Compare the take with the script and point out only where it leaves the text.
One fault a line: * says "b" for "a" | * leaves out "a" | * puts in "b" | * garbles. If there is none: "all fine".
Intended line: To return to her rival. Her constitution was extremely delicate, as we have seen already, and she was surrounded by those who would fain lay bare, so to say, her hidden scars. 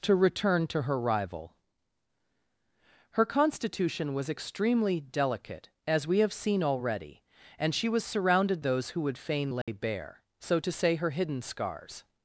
* leaves out "by"